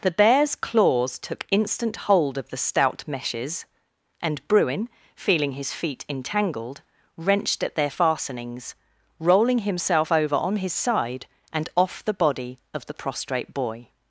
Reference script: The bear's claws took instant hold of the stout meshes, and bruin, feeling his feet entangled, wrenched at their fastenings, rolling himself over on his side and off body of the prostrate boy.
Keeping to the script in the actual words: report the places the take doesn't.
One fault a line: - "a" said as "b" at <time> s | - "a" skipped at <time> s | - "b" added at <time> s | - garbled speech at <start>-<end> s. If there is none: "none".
- "the" added at 12.0 s